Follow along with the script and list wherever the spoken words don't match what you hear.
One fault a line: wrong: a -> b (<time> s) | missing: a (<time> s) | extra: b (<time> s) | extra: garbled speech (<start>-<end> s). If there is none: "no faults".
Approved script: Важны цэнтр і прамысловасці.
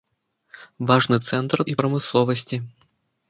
no faults